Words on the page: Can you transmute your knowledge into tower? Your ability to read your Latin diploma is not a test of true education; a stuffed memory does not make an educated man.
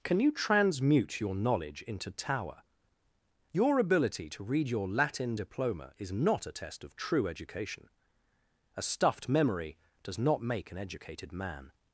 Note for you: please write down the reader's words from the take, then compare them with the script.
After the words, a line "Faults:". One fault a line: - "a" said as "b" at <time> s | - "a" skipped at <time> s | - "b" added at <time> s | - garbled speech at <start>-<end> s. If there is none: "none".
Can you transmute your knowledge into tower? Your ability to read your Latin diploma is not a test of true education; a stuffed memory does not make an educated man.
Faults:
none